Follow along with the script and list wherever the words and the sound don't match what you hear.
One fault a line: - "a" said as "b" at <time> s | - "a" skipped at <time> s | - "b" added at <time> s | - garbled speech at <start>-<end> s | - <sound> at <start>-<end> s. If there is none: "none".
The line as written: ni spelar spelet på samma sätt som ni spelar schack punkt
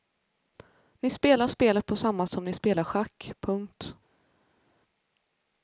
- "sätt" skipped at 2.3 s